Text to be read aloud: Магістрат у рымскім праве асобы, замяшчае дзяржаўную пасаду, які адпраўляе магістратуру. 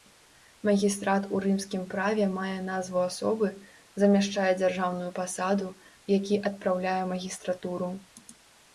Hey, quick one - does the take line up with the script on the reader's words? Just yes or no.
no